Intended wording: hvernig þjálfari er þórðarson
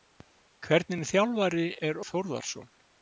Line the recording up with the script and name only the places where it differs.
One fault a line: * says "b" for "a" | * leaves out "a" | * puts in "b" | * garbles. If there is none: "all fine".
all fine